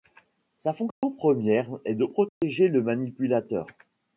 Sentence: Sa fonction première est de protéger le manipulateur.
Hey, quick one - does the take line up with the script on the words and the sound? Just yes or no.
no